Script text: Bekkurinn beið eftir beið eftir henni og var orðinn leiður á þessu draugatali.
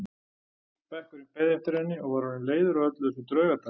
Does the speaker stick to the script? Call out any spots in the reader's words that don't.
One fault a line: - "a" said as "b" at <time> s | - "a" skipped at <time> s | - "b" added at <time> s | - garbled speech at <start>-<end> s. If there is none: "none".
- "beið eftir" skipped at 1.8 s
- "öllu" added at 2.9 s